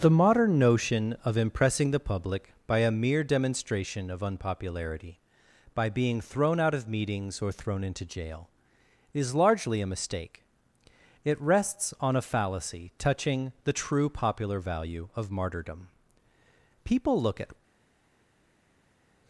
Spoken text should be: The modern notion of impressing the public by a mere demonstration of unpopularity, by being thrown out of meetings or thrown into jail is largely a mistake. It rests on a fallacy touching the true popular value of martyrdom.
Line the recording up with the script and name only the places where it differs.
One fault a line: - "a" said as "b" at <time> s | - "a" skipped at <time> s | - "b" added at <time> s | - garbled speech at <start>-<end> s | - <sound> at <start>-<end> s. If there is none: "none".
- "People look at" added at 16.8 s